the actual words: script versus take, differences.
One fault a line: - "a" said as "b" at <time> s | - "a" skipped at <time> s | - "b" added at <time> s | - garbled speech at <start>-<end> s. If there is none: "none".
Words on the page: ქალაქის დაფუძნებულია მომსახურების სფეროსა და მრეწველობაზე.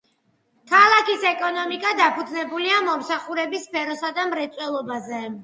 - "ეკონომიკა" added at 1.3 s